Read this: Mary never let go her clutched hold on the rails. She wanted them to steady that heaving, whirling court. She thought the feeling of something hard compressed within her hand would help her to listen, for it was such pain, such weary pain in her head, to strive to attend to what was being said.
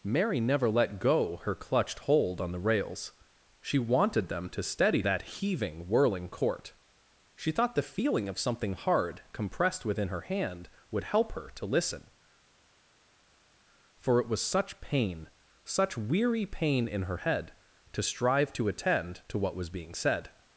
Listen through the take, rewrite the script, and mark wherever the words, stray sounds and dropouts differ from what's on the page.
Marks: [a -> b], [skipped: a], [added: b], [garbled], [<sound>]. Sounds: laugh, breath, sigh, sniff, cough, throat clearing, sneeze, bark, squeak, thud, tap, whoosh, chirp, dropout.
Mary never let go her clutched hold on the rails. She wanted them to steady that heaving, whirling court. She thought the feeling of something hard compressed within her hand would help her to listen, for it was such pain, such weary pain in her head, to strive to attend to what was being said.